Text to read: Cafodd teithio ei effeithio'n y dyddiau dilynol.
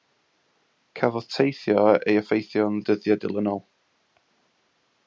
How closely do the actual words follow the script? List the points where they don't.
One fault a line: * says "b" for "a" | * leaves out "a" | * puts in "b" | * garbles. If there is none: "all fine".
all fine